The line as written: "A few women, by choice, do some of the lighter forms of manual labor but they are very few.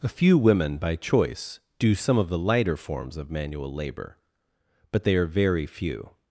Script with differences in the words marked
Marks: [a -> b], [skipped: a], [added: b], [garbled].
"A few women, by choice, do some of the lighter forms of manual labor but they are very few.